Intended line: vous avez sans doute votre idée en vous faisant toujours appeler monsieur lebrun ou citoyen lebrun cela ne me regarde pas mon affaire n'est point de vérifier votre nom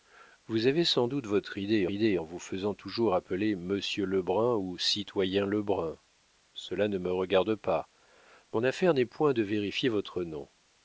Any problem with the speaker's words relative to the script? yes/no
yes